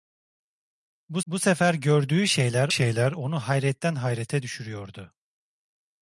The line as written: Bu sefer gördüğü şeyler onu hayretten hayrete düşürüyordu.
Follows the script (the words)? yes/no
no